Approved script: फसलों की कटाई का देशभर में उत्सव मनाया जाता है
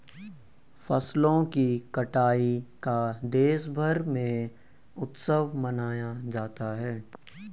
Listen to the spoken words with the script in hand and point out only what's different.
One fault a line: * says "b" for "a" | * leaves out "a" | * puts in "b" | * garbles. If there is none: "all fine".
all fine